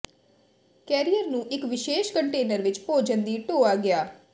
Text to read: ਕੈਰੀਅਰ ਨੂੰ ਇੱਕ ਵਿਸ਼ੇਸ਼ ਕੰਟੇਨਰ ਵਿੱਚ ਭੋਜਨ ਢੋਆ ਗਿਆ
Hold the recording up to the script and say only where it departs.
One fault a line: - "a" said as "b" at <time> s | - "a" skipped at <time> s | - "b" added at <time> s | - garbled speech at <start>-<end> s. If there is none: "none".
- "ਦੀ" added at 3.2 s